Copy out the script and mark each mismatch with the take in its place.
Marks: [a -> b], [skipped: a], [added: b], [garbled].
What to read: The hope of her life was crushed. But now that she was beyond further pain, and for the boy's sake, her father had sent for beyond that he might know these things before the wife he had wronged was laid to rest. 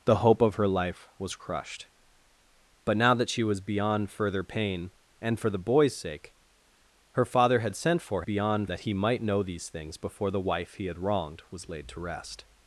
The hope of her life was crushed. But now that she was beyond further pain, and for the boy's sake, her father had sent for beyond that he might know these things before the wife he had wronged was laid to rest.